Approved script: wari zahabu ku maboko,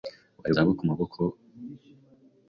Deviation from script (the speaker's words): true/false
false